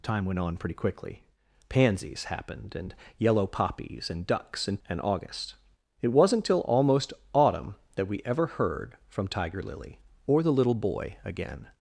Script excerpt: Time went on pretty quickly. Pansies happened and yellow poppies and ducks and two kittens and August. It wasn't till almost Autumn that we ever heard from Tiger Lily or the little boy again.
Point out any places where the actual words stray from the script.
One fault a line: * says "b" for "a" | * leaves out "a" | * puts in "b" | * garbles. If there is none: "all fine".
* leaves out "two kittens"